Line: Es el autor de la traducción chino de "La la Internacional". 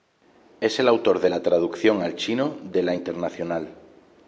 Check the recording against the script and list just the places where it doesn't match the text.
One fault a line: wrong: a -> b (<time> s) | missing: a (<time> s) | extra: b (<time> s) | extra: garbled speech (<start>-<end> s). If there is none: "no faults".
extra: al (2.0 s)
missing: la (3.0 s)